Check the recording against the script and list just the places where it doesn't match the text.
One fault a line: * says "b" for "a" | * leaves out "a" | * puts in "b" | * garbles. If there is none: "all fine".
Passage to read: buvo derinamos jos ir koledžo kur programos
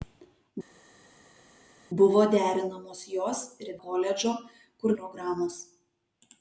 all fine